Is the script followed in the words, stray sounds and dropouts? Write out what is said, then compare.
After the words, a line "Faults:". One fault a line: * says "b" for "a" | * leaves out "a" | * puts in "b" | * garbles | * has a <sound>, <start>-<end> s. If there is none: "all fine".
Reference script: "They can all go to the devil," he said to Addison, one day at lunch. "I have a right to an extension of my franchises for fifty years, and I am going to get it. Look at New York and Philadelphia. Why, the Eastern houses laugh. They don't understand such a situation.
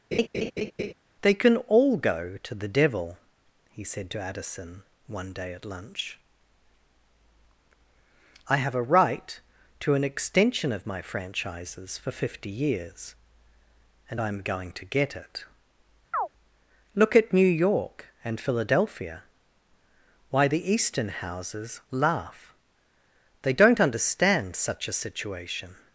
"They can all go to the devil," he said to Addison, one day at lunch. "I have a right to an extension of my franchises for fifty years, and I am going to get it. Look at New York and Philadelphia. Why, the Eastern houses laugh. They don't understand such a situation.
Faults:
* has a laugh, 0.1-0.9 s
* has a chirp, 16.1-16.3 s